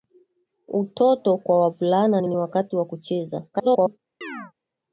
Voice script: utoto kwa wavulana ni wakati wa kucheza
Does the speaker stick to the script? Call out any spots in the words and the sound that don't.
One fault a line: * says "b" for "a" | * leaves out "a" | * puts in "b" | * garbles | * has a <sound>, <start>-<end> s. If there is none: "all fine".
* puts in "ni"
* garbles
* has a chirp, 4.2-4.5 s